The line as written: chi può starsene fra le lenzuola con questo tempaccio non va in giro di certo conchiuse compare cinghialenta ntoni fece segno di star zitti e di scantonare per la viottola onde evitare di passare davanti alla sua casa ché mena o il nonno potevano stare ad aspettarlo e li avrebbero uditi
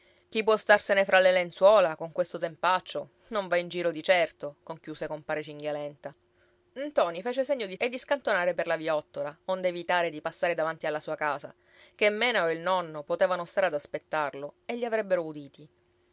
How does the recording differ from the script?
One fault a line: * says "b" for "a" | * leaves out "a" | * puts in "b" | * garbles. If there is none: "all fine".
* leaves out "star zitti"